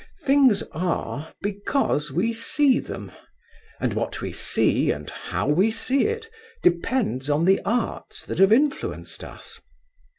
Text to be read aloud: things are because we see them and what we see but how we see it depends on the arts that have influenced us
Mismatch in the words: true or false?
true